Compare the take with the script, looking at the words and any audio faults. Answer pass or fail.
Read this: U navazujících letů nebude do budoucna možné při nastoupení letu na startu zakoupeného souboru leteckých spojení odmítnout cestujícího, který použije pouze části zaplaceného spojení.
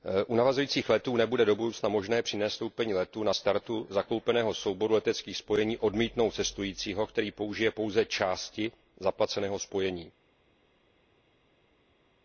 pass